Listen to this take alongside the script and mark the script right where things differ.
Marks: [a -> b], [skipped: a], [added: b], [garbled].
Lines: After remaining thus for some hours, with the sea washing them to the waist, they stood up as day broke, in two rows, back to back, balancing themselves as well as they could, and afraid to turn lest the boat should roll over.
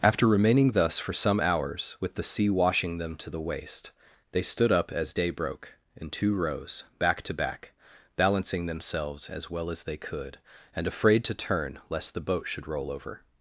After remaining thus for some hours, with the sea washing them to the waist, they stood up as day broke, in two rows, back to back, balancing themselves as well as they could, and afraid to turn lest the boat should roll over.